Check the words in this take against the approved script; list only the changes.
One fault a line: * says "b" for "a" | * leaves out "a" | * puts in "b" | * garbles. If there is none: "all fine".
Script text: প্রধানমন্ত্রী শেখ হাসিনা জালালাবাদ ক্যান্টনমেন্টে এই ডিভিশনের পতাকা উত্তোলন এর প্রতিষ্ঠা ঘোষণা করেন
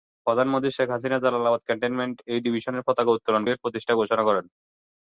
all fine